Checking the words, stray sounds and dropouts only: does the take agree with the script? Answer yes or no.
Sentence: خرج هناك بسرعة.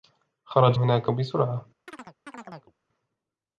no